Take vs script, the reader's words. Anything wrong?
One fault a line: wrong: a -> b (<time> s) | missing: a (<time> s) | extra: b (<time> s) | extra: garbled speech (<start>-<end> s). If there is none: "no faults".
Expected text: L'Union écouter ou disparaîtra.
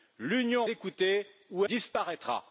no faults